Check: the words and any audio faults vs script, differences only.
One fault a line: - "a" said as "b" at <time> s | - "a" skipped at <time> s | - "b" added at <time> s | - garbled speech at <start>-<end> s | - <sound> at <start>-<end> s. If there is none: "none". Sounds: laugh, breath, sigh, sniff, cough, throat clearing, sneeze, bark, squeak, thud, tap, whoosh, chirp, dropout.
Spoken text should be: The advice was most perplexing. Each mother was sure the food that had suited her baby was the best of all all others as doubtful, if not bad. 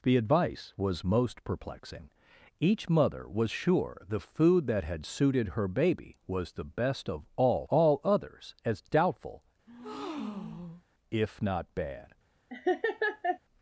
- breath at 9.7-10.8 s
- laugh at 12.5-13.4 s